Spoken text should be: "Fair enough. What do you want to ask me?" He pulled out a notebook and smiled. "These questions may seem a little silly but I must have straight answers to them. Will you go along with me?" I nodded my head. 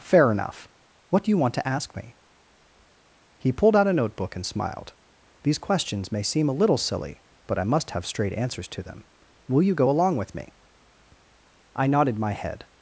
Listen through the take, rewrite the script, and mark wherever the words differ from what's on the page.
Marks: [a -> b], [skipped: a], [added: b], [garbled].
"Fair enough. What do you want to ask me?" He pulled out a notebook and smiled. "These questions may seem a little silly but I must have straight answers to them. Will you go along with me?" I nodded my head.